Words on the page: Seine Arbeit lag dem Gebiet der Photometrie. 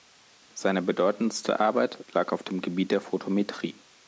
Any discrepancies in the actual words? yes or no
yes